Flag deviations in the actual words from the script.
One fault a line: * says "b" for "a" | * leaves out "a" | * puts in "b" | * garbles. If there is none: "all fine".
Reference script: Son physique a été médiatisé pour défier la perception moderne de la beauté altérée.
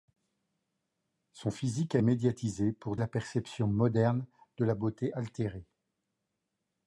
* leaves out "été"
* leaves out "défier"